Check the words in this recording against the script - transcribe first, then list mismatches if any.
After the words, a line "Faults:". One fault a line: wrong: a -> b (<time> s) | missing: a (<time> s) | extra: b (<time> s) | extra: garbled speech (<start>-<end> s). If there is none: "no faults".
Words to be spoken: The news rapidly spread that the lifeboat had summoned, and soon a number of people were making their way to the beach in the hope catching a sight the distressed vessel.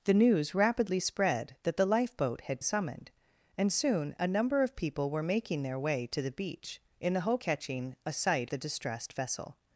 The news rapidly spread that the lifeboat had summoned, and soon a number of people were making their way to the beach in the hope catching a sight the distressed vessel.
Faults:
no faults